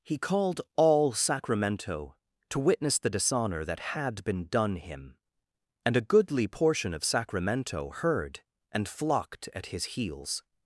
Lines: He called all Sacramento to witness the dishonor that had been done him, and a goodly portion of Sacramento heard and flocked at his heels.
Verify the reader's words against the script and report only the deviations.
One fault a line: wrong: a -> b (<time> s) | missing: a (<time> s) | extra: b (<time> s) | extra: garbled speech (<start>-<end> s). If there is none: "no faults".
no faults